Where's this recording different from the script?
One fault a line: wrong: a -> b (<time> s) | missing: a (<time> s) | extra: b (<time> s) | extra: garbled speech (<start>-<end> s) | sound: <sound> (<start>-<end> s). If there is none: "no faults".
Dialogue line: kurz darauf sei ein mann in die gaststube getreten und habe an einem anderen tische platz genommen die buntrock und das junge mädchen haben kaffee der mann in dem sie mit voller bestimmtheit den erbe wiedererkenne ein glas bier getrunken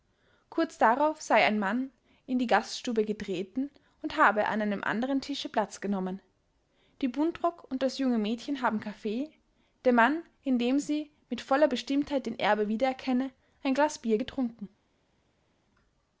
no faults